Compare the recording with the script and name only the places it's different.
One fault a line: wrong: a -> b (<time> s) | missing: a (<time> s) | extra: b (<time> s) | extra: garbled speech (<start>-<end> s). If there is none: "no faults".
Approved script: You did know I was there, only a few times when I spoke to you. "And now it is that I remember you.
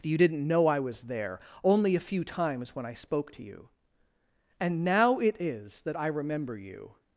wrong: did -> didn't (0.2 s)